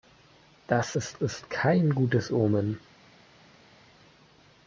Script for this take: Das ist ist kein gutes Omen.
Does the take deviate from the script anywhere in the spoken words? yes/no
no